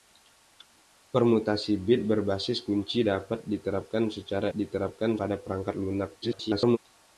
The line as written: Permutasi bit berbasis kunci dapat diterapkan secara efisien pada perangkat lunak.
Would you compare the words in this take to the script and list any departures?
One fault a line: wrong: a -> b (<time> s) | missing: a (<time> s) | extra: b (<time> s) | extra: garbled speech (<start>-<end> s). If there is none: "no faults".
wrong: efisien -> diterapkan (4.5 s)
extra: garbled speech (6.2-6.8 s)